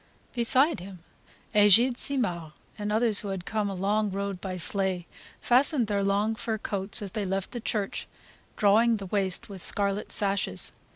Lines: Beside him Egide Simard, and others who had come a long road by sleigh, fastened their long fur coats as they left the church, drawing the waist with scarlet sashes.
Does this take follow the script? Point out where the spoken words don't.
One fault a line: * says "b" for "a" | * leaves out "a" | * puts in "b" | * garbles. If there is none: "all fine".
all fine